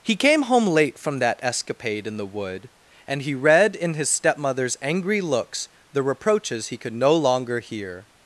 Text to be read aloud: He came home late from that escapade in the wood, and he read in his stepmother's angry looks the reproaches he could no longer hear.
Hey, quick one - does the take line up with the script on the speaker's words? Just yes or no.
yes